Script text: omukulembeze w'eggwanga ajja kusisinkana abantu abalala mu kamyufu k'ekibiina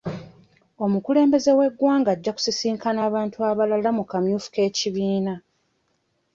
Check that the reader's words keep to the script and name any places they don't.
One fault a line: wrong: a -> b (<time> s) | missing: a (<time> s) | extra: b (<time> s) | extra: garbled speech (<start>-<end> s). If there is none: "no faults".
no faults